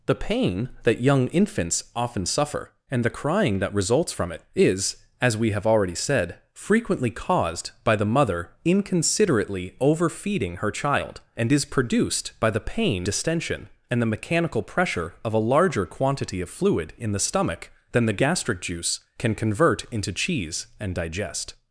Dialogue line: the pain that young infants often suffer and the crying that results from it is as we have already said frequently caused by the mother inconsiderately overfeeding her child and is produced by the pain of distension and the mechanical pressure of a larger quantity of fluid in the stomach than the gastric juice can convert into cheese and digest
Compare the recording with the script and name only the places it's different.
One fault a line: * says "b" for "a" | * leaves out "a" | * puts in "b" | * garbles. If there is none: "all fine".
* leaves out "of"